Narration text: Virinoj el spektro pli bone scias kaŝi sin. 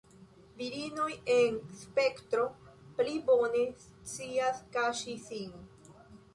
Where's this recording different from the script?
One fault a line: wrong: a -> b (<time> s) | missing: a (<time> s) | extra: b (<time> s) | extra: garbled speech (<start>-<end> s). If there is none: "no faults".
wrong: el -> en (1.3 s)